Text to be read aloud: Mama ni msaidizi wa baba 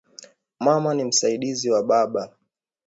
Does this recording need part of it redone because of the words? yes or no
no